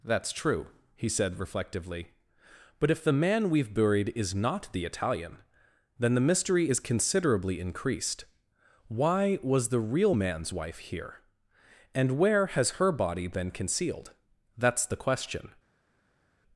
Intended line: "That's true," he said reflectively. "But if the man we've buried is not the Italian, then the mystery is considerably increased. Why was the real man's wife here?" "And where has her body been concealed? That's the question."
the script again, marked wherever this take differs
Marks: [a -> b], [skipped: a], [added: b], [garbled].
"That's true," he said reflectively. "But if the man we've buried is not the Italian, then the mystery is considerably increased. Why was the real man's wife here?" "And where has her body been concealed? That's the question."